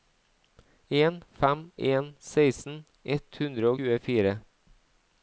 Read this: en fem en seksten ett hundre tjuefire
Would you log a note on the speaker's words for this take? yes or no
no